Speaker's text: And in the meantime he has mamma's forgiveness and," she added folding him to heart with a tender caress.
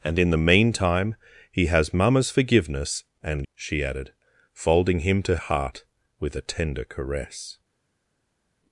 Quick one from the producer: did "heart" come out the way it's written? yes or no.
yes